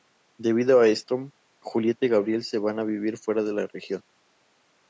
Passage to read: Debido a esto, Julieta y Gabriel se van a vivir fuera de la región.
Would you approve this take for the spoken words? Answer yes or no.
yes